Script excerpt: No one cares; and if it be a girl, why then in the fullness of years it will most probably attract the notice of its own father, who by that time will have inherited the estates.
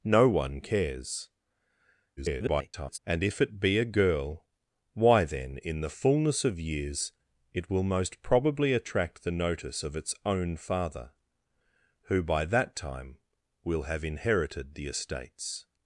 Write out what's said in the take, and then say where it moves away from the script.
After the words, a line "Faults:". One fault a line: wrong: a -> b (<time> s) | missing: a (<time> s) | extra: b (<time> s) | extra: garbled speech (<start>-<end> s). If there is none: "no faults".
No one cares; [garbled] and if it be a girl, why then in the fullness of years it will most probably attract the notice of its own father, who by that time will have inherited the estates.
Faults:
extra: garbled speech (2.2-3.0 s)